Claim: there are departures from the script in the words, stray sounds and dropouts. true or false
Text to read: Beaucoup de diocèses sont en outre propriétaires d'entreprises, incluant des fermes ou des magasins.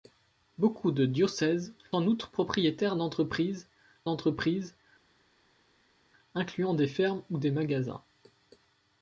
true